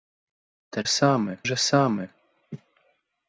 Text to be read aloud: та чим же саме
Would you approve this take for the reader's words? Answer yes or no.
no